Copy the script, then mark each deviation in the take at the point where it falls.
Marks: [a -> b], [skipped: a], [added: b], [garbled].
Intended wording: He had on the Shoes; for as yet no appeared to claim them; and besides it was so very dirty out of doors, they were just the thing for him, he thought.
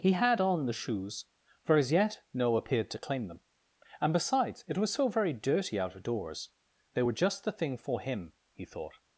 He had on the Shoes; for as yet no appeared to claim them; and besides it was so very dirty out of doors, they were just the thing for him, he thought.